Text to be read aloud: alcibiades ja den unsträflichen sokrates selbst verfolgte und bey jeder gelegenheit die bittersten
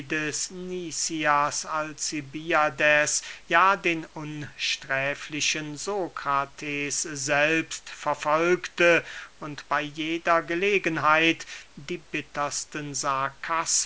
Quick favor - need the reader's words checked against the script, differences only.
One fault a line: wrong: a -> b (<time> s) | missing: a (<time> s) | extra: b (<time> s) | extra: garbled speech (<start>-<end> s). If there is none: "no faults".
no faults